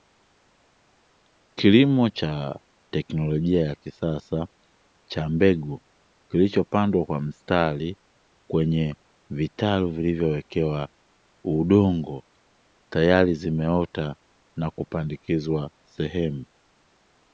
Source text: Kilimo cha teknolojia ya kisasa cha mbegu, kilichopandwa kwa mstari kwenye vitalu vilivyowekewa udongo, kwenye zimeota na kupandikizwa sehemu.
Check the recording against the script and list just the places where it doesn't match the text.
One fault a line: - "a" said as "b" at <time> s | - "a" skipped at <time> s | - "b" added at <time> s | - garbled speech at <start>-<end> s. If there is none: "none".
- "kwenye" said as "tayari" at 12.9 s